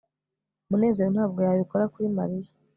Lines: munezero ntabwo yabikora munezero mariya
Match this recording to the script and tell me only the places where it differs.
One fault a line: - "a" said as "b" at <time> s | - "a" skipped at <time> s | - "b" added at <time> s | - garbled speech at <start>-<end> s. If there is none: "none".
- "munezero" said as "kuri" at 1.9 s